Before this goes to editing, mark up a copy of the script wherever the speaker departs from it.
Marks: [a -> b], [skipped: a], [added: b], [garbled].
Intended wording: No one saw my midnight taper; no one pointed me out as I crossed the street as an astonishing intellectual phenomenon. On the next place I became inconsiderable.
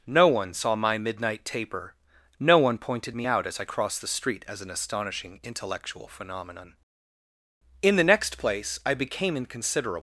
No one saw my midnight taper; no one pointed me out as I crossed the street as an astonishing intellectual phenomenon. [On -> In] the next place I became inconsiderable.